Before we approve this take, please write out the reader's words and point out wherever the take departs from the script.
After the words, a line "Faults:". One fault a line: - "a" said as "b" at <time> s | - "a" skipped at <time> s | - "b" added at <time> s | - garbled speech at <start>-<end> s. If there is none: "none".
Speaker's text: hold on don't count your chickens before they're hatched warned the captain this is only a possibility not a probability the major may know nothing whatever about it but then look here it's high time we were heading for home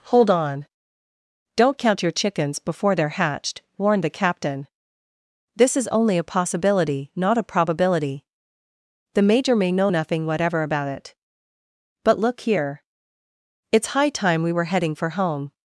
hold on don't count your chickens before they're hatched warned the captain this is only a possibility not a probability the major may know nothing whatever about it but look here it's high time we were heading for home
Faults:
- "then" skipped at 12.2 s